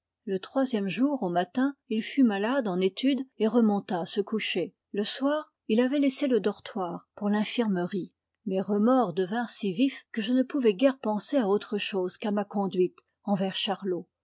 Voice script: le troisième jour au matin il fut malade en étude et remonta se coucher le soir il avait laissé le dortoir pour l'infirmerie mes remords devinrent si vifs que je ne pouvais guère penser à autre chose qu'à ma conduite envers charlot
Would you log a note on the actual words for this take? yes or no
no